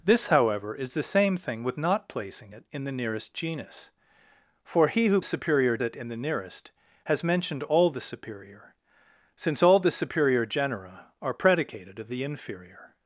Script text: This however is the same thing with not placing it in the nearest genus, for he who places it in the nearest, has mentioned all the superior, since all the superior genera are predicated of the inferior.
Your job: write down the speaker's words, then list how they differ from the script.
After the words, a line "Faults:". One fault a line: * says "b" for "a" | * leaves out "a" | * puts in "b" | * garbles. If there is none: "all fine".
This however is the same thing with not placing it in the nearest genus, for he who superior it in the nearest, has mentioned all the superior, since all the superior genera are predicated of the inferior.
Faults:
* says "superior" for "places"